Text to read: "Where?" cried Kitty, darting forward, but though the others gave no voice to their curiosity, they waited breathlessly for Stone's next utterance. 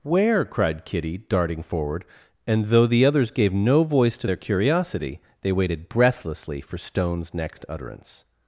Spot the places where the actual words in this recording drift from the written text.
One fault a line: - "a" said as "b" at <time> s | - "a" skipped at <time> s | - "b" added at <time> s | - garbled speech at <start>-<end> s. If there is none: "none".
- "but" said as "and" at 2.5 s